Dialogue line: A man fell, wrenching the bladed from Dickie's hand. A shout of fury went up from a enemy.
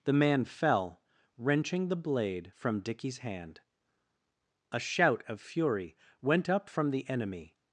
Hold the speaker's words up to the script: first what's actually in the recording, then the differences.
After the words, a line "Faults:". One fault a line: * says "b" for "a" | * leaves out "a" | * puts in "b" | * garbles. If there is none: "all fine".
The man fell, wrenching the blade from Dickie's hand. A shout of fury went up from the enemy.
Faults:
* says "The" for "A"
* says "blade" for "bladed"
* says "the" for "a"